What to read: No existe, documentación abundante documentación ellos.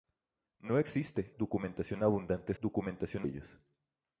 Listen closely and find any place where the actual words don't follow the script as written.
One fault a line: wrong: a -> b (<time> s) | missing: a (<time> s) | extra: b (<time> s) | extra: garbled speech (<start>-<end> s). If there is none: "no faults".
no faults